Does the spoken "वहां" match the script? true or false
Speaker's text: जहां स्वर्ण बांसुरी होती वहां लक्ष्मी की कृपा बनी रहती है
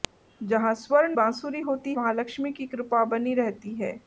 true